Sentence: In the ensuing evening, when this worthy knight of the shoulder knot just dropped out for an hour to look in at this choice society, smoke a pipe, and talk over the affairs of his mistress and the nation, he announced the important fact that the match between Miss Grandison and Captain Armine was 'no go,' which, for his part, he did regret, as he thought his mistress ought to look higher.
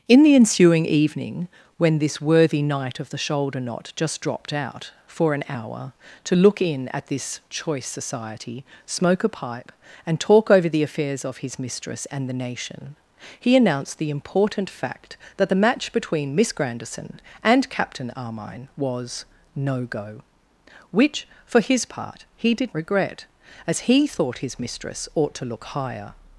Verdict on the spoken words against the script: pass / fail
pass